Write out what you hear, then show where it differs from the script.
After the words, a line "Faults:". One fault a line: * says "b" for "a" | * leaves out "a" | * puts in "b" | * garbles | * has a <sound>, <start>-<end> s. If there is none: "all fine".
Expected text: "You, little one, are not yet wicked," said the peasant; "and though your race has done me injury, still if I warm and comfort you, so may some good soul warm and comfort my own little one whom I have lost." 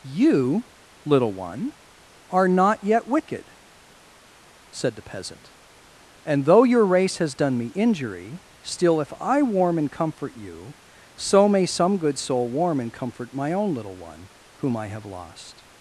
"You, little one, are not yet wicked," said the peasant; "and though your race has done me injury, still if I warm and comfort you, so may some good soul warm and comfort my own little one whom I have lost."
Faults:
all fine